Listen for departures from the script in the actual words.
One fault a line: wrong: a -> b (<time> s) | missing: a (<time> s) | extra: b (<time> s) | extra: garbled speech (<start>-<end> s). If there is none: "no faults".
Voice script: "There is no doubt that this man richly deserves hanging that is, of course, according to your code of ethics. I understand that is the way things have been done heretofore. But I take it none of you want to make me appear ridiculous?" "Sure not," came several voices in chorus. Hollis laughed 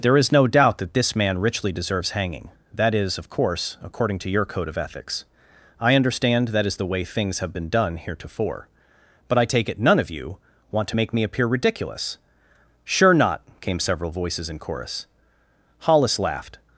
no faults